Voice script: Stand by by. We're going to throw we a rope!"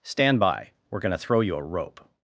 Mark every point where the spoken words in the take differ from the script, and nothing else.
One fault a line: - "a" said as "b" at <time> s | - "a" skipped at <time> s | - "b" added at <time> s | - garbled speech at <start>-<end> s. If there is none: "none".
- "by" skipped at 0.7 s
- "we" said as "you" at 1.4 s